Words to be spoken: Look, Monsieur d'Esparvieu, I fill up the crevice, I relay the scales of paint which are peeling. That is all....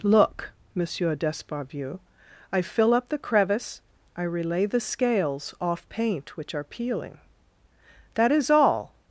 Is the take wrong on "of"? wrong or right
wrong